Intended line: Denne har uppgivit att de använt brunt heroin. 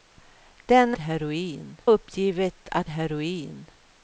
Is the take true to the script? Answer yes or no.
no